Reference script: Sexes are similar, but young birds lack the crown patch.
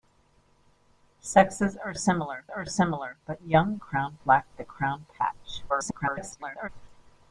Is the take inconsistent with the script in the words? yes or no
yes